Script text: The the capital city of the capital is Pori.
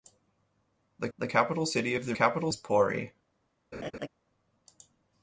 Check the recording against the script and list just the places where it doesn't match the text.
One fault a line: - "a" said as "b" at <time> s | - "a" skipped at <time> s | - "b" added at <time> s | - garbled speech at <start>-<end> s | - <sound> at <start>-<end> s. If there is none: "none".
- laugh at 3.7-4.1 s